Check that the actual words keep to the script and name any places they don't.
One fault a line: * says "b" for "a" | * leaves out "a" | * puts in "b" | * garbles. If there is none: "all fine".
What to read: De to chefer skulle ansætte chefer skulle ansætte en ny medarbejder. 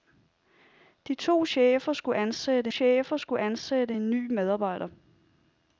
all fine